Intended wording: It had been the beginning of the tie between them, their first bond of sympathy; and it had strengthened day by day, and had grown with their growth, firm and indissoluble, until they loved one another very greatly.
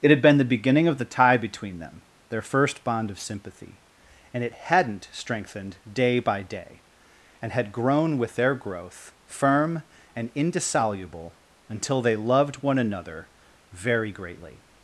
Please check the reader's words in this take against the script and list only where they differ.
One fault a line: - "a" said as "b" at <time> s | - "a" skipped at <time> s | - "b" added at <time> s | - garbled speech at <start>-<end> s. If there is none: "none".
- "had" said as "hadn't" at 4.5 s